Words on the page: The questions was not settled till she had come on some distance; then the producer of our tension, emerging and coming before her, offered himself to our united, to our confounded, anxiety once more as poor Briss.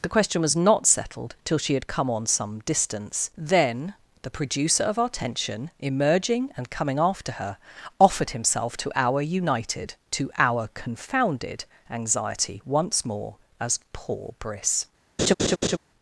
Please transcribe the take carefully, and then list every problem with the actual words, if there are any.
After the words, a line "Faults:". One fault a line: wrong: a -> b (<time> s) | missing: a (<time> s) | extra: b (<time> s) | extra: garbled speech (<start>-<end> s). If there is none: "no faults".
The question was not settled till she had come on some distance; then the producer of our tension, emerging and coming after her, offered himself to our united, to our confounded, anxiety once more as poor Briss.
Faults:
wrong: questions -> question (0.1 s)
wrong: before -> after (7.0 s)